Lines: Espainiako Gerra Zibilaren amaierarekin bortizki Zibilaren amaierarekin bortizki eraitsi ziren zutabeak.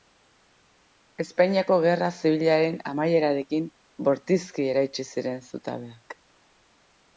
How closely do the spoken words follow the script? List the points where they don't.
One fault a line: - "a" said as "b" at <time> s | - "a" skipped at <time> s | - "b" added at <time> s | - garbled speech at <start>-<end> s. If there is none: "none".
- "Zibilaren amaierarekin bortizki" skipped at 4.7 s